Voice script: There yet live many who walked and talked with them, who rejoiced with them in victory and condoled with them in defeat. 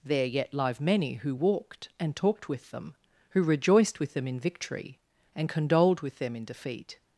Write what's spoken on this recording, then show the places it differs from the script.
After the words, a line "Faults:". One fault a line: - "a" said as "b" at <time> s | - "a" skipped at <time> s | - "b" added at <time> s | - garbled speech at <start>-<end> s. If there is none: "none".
There yet live many who walked and talked with them, who rejoiced with them in victory and condoled with them in defeat.
Faults:
none